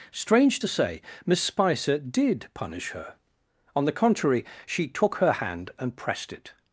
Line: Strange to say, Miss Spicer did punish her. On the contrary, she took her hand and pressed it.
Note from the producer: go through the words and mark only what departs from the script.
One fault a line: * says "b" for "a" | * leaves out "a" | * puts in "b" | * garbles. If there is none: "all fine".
all fine